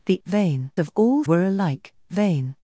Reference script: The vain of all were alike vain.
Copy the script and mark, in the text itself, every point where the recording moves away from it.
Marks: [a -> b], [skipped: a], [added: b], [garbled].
The vain of all were alike vain.